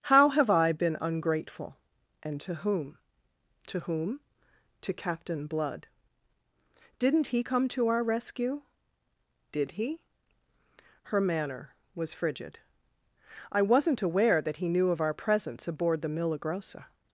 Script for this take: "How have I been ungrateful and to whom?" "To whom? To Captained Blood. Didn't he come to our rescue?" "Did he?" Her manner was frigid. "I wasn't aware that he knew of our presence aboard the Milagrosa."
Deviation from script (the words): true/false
true